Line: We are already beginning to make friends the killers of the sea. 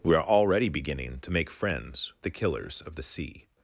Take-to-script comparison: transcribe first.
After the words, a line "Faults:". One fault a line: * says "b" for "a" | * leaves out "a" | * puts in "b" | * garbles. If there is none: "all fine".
We are already beginning to make friends the killers of the sea.
Faults:
all fine